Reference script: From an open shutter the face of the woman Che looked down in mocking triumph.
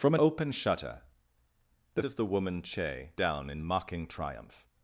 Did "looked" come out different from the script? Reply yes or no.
yes